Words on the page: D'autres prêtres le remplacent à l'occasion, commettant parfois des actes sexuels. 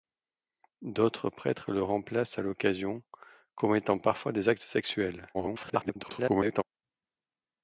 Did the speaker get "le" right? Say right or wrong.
right